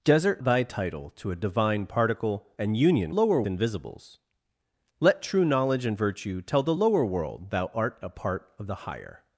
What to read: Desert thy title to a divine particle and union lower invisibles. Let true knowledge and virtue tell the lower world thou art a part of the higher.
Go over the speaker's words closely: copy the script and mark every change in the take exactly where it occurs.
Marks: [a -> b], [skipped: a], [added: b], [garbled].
Desert thy title to a divine particle and union lower invisibles. Let true knowledge and virtue tell the lower world thou art a part of the higher.